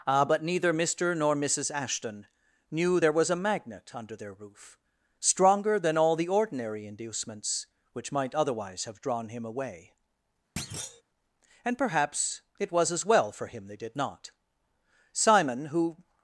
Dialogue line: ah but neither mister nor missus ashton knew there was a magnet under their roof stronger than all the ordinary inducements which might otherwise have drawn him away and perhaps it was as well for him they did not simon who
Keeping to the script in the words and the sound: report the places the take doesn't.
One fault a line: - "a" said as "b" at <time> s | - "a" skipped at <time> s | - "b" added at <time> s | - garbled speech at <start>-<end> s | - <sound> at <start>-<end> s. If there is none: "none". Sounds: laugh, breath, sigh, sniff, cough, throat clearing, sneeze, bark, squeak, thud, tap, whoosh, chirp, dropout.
- thud at 10.6-11.0 s